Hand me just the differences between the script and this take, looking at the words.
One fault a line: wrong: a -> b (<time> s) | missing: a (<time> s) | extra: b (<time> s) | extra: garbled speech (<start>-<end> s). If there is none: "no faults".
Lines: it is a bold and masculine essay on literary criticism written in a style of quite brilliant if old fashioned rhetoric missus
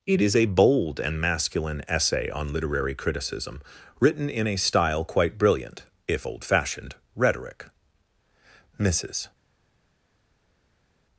missing: of (5.0 s)